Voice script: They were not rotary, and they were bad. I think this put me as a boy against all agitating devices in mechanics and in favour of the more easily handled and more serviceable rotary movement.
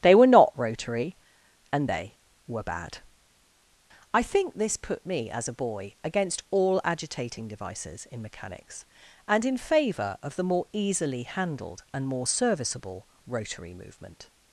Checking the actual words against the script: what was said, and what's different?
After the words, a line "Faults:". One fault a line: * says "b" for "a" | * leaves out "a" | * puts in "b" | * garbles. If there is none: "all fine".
They were not rotary, and they were bad. I think this put me as a boy against all agitating devices in mechanics and in favour of the more easily handled and more serviceable rotary movement.
Faults:
all fine